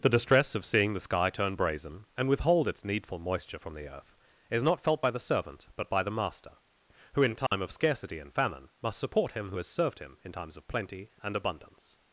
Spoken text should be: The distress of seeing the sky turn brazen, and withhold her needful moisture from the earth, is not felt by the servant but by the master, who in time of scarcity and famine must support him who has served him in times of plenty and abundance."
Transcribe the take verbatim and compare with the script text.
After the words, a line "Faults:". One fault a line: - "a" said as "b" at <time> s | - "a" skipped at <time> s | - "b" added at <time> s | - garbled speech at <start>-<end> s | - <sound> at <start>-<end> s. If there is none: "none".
The distress of seeing the sky turn brazen, and withhold its needful moisture from the earth, is not felt by the servant but by the master, who in time of scarcity and famine must support him who has served him in times of plenty and abundance."
Faults:
- "her" said as "its" at 2.7 s
- dropout at 7.5-7.5 s